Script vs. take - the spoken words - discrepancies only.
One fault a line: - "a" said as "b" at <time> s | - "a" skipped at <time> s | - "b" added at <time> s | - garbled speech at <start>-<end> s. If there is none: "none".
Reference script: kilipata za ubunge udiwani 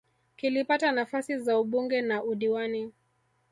- "nafasi" added at 0.9 s
- "na" added at 2.0 s